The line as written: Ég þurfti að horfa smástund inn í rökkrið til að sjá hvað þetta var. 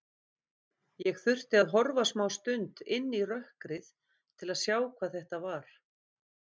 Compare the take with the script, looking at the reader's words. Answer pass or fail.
pass